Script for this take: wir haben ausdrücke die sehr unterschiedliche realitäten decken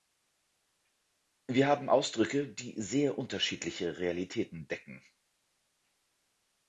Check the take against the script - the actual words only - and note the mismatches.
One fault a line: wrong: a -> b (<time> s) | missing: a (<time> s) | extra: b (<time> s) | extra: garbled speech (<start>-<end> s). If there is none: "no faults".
no faults